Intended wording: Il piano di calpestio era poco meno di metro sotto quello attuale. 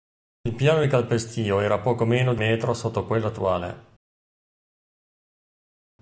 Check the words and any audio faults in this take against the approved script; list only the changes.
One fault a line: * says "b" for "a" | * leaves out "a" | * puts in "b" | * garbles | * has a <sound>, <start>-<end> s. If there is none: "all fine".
all fine